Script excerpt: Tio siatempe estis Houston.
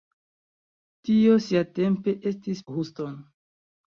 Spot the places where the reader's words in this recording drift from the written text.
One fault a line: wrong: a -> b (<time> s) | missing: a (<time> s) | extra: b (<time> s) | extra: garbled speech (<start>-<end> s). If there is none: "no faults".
no faults